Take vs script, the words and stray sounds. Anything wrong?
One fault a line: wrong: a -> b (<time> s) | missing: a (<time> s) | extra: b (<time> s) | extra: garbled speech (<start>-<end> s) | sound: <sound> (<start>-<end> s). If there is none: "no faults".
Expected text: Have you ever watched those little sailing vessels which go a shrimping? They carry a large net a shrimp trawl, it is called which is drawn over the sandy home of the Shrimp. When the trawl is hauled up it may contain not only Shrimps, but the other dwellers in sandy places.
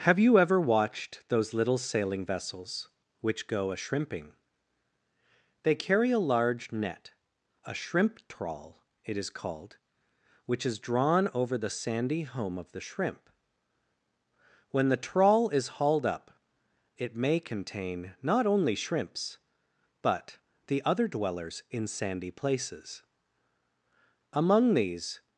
extra: Among these (24.3 s)